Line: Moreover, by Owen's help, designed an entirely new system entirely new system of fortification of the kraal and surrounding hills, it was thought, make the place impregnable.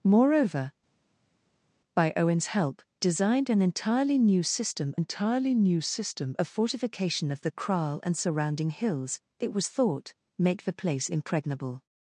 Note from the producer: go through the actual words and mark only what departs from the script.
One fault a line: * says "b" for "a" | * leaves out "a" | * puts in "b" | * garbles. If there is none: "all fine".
all fine